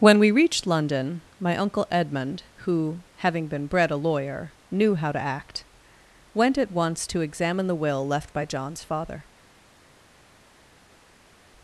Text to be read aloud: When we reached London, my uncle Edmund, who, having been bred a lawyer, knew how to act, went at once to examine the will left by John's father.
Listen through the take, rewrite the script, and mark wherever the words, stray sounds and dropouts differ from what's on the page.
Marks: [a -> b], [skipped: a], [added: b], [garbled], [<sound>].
When we reached London, my uncle Edmund, who, having been bred a lawyer, knew how to act, went at once to examine the will left by John's father.